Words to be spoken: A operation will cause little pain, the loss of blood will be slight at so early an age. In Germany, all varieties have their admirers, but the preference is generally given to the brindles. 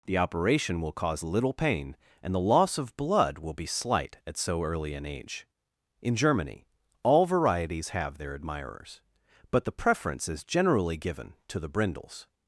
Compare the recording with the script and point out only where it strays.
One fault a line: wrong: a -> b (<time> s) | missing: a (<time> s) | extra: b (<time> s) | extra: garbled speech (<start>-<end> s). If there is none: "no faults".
wrong: A -> The (0.1 s)
extra: and (2.2 s)